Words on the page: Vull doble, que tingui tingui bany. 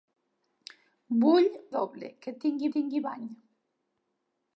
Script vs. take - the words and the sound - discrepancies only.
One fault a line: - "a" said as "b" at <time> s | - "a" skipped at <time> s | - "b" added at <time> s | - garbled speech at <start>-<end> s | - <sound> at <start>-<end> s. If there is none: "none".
none